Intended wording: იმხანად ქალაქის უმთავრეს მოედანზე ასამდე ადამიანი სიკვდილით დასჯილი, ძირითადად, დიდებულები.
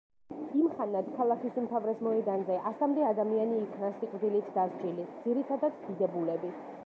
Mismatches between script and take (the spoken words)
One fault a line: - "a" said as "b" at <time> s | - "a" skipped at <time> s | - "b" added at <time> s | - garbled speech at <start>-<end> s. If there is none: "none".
- "იქნა" added at 3.7 s